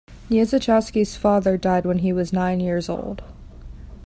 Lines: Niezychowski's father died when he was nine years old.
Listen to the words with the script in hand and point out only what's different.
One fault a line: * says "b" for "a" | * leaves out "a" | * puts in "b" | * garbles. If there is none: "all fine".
all fine